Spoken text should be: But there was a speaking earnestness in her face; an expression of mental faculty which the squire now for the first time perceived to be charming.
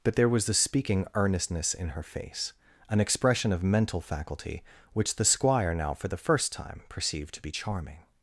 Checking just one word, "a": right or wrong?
wrong